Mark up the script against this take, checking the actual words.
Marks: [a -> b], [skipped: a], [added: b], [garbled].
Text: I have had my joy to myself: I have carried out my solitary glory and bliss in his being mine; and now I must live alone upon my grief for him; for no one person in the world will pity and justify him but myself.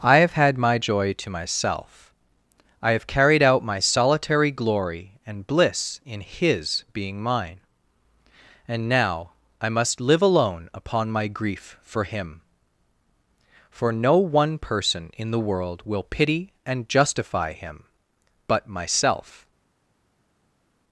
I have had my joy to myself: I have carried out my solitary glory and bliss in his being mine; and now I must live alone upon my grief for him; for no one person in the world will pity and justify him but myself.